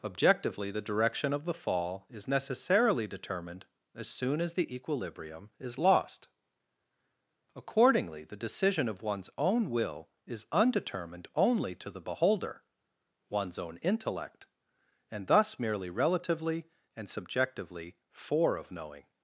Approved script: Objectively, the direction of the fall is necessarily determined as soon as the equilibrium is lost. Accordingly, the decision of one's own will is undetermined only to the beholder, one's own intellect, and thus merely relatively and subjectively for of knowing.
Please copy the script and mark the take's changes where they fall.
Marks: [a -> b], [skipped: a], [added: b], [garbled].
Objectively, the direction of the fall is necessarily determined as soon as the equilibrium is lost. Accordingly, the decision of one's own will is undetermined only to the beholder, one's own intellect, and thus merely relatively and subjectively for of knowing.